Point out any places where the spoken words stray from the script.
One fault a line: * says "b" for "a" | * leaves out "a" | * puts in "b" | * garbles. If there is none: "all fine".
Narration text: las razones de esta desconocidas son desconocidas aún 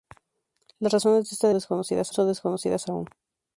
all fine